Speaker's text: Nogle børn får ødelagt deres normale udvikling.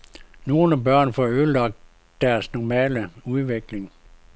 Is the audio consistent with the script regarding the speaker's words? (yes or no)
yes